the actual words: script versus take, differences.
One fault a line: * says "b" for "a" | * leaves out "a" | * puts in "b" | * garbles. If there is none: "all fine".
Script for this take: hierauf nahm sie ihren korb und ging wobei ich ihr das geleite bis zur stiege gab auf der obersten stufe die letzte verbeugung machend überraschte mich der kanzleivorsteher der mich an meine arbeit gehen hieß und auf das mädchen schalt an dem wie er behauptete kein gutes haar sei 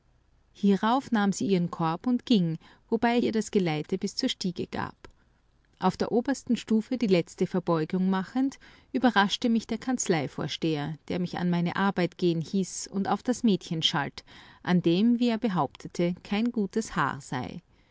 * leaves out "ich"